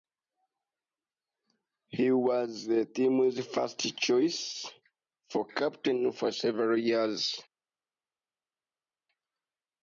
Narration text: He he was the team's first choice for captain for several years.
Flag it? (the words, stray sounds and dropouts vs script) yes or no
yes